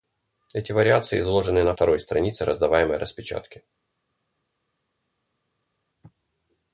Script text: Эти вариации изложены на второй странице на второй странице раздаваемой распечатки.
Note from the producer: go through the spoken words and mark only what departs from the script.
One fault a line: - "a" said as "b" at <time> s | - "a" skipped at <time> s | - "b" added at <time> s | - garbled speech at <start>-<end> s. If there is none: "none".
- "на второй странице" skipped at 2.4 s